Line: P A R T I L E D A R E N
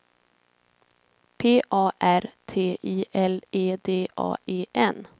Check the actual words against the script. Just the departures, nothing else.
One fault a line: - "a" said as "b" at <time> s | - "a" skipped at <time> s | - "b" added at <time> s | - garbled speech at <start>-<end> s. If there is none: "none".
- "R" skipped at 4.4 s